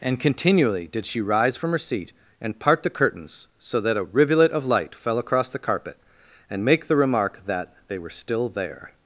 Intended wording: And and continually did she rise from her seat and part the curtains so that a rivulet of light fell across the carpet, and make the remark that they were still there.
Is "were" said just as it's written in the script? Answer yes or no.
yes